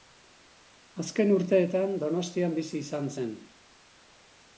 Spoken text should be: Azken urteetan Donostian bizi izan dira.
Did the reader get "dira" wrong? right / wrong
wrong